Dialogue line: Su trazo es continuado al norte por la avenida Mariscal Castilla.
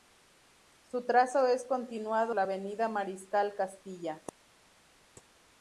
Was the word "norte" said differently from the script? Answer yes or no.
yes